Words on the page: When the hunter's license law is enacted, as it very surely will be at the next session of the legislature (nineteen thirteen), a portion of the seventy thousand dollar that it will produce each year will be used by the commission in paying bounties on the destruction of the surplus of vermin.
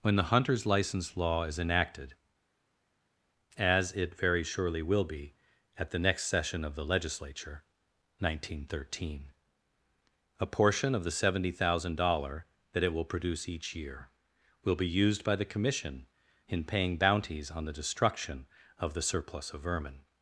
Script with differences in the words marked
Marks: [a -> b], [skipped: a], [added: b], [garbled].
When the hunter's license law is enacted, as it very surely will be at the next session of the legislature (nineteen thirteen), a portion of the seventy thousand dollar that it will produce each year will be used by the commission in paying bounties on the destruction of the surplus of vermin.